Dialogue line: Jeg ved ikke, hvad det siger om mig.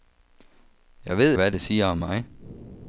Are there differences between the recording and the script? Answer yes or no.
yes